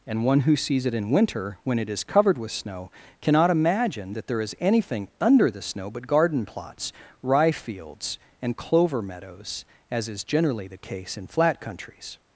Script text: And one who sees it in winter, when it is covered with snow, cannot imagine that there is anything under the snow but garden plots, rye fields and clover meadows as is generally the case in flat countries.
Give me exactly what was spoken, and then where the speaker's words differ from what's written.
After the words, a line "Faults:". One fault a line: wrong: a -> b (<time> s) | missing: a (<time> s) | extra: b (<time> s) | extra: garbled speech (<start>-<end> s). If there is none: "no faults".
And one who sees it in winter, when it is covered with snow, cannot imagine that there is anything under the snow but garden plots, rye fields and clover meadows as is generally the case in flat countries.
Faults:
no faults